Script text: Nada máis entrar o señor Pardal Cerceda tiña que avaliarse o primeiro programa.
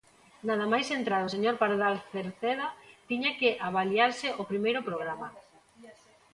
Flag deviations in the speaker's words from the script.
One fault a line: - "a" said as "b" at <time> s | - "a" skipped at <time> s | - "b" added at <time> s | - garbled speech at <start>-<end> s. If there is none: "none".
none